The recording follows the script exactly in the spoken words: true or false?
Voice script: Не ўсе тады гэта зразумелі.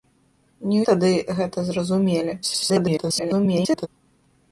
false